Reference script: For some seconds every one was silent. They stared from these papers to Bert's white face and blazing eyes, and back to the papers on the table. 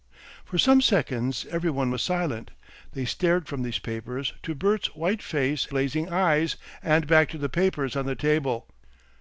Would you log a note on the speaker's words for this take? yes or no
yes